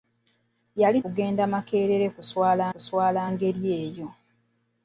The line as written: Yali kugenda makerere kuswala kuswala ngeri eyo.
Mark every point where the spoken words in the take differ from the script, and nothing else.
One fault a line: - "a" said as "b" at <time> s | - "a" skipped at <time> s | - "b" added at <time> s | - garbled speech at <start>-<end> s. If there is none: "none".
none